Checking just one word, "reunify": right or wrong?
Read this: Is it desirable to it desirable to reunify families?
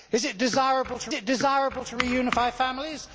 right